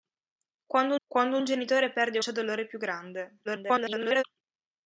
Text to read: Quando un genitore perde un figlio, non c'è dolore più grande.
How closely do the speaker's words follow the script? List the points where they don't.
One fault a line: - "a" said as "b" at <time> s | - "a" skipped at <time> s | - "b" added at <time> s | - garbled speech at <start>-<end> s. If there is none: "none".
- "quando" added at 1.1 s
- "un figlio non" skipped at 2.2 s
- garbled speech at 3.4-4.2 s